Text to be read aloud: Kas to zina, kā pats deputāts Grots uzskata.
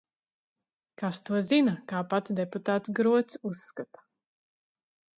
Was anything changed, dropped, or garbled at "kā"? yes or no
no